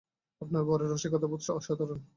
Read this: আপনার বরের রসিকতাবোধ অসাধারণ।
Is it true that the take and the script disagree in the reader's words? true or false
false